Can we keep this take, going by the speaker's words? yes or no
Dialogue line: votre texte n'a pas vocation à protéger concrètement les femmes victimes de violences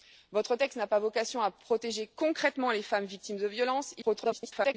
no